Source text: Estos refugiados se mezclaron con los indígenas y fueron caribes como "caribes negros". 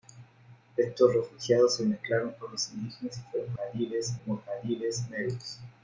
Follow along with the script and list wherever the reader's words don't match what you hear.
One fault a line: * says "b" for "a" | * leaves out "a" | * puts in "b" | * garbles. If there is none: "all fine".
all fine